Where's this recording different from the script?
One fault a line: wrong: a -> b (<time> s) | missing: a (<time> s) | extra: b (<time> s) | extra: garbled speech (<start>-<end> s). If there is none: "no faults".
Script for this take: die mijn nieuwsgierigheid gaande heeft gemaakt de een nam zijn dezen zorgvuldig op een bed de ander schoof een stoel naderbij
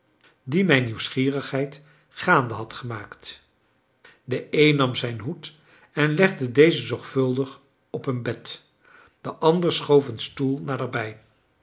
wrong: heeft -> had (2.5 s)
extra: hoed en legde (5.2 s)